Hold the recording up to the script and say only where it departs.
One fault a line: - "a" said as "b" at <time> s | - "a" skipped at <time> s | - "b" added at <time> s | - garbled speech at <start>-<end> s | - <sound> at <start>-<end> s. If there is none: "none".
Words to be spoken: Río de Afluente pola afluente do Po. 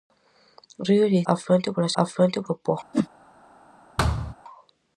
- whoosh at 2.9-3.1 s
- thud at 4.0-4.3 s